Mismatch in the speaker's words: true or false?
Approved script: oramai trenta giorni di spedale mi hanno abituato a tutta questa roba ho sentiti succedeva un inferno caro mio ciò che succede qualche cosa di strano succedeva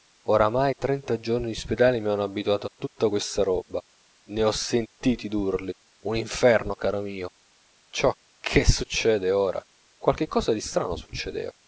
true